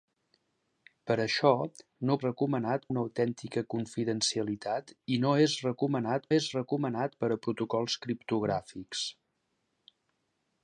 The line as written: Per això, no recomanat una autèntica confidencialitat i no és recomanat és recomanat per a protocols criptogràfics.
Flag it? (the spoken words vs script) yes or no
no